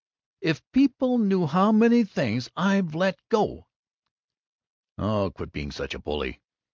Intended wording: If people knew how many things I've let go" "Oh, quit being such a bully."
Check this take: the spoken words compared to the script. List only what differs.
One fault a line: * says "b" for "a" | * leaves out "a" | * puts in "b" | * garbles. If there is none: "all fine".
all fine